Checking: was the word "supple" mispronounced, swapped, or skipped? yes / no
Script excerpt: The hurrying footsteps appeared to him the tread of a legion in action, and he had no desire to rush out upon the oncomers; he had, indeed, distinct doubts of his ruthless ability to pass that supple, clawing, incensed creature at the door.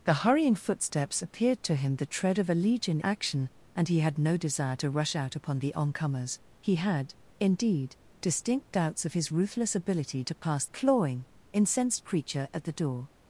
yes